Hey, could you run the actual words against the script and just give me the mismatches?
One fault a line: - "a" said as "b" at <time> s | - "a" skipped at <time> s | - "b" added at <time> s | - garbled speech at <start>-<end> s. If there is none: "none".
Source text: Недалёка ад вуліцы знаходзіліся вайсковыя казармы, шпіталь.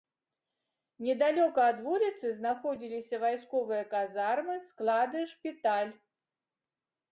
- "склады" added at 4.7 s